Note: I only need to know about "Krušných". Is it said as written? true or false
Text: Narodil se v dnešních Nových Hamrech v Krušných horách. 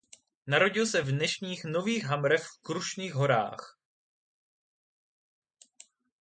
true